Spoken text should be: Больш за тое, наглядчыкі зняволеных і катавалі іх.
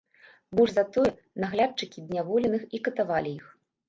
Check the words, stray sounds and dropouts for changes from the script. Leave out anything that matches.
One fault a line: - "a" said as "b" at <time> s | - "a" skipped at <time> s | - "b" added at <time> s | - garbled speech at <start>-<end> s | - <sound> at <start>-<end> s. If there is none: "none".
none